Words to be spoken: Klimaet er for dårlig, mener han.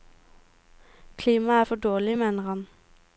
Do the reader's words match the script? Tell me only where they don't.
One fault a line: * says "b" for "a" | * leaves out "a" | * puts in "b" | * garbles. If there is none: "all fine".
all fine